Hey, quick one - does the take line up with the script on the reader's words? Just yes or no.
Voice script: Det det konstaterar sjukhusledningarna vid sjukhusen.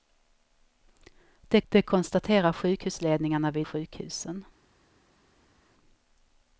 yes